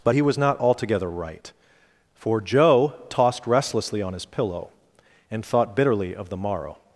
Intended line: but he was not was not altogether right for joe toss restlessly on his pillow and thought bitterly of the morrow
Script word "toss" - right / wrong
wrong